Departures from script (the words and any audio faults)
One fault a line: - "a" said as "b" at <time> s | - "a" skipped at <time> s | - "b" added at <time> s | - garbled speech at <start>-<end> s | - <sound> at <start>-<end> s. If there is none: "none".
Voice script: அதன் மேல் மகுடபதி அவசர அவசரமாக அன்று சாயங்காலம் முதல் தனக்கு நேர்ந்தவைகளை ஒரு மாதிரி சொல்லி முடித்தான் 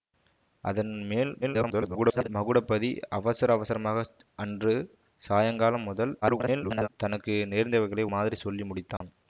- garbled speech at 1.4-2.3 s
- garbled speech at 6.2-6.9 s
- "ஒரு" skipped at 8.1 s
- dropout at 9.0-9.0 s